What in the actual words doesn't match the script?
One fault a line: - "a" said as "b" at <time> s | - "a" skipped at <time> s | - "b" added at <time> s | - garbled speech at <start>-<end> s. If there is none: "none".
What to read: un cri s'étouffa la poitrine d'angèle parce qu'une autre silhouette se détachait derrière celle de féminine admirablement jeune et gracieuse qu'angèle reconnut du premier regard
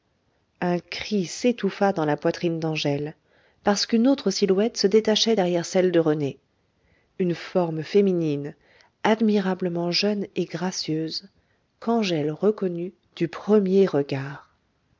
- "dans" added at 1.9 s
- "rené une forme" added at 6.0 s